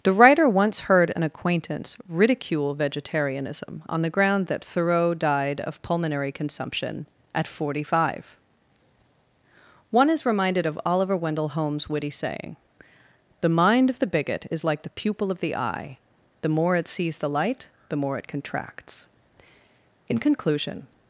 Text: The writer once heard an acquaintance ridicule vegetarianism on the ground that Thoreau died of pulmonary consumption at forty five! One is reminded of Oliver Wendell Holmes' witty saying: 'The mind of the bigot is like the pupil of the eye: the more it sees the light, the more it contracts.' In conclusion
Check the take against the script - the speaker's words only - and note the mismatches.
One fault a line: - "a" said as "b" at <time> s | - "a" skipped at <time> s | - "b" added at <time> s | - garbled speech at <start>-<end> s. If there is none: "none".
none